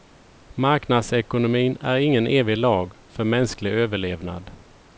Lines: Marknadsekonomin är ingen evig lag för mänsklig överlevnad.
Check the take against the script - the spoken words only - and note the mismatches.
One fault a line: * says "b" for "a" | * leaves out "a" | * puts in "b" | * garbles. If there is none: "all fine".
all fine